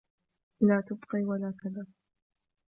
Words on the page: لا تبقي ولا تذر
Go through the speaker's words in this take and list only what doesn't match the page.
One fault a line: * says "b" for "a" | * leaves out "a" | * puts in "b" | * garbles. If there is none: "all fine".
all fine